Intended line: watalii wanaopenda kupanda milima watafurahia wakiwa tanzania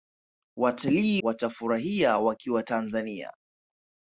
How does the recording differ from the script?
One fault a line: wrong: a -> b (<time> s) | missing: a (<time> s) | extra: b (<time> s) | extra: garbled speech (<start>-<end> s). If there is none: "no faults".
missing: wanaopenda kupanda milima (1.2 s)